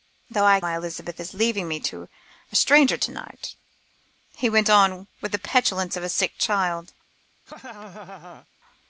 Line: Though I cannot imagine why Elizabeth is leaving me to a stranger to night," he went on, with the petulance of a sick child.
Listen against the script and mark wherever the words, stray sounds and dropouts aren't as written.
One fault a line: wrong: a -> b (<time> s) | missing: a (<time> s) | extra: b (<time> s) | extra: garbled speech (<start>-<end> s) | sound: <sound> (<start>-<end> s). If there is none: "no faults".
missing: cannot imagine (0.6 s)
sound: laugh (7.5-8.5 s)